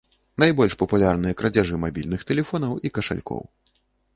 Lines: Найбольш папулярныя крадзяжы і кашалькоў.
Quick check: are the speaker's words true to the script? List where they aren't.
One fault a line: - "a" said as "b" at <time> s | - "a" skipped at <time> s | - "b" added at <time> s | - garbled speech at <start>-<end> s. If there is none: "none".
- "мабільных тэлефонаў" added at 1.8 s